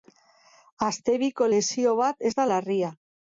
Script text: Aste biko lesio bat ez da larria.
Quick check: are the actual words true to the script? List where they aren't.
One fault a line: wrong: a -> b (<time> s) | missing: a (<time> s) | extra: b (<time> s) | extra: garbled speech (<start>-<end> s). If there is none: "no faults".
no faults